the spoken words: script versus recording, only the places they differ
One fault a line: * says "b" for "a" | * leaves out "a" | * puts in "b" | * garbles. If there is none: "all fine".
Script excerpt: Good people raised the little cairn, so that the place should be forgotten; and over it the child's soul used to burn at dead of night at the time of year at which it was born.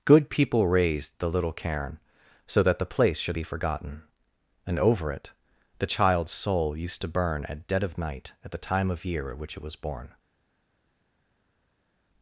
all fine